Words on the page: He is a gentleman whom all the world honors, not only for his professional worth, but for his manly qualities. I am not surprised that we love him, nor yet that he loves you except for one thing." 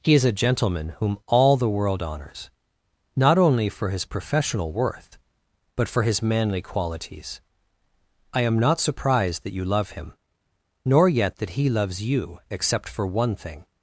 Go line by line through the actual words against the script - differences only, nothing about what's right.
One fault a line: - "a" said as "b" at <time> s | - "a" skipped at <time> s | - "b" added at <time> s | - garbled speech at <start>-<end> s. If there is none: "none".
- "we" said as "you" at 9.5 s